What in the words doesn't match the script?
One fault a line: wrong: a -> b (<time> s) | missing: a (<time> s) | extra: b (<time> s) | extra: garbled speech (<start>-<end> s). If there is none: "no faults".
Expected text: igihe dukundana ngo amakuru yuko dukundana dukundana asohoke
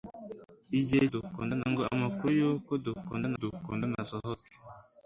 no faults